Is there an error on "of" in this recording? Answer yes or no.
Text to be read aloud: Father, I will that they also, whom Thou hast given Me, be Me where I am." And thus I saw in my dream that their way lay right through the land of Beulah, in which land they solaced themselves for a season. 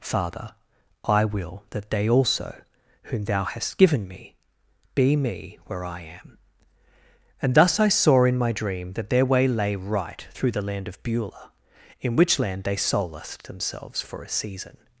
no